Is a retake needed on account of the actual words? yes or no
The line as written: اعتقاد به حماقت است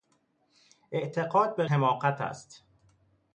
no